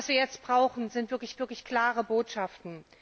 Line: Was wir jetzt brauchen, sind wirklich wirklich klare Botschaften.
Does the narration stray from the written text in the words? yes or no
no